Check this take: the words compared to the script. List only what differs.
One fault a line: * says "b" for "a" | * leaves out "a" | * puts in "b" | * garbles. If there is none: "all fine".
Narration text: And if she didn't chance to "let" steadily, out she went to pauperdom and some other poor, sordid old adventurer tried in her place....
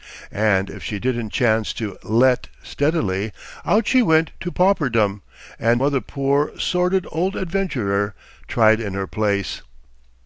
* leaves out "some"